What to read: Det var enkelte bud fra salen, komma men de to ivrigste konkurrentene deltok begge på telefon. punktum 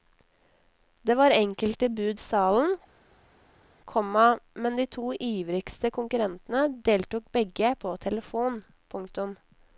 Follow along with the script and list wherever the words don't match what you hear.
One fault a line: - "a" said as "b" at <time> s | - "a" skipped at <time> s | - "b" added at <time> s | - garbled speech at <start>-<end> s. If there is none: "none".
- "fra" skipped at 2.2 s